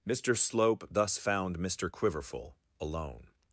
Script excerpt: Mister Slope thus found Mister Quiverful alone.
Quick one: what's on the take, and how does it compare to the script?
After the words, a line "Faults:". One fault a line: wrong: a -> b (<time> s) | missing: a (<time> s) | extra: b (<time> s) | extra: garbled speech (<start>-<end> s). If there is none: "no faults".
Mister Slope thus found Mister Quiverful alone.
Faults:
no faults